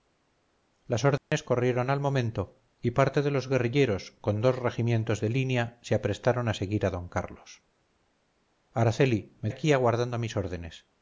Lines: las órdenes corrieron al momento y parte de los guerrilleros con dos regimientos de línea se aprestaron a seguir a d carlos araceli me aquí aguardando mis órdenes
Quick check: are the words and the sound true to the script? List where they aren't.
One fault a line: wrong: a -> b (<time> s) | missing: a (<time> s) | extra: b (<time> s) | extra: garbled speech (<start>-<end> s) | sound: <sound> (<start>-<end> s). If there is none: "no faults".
sound: dropout (1.2-1.3 s)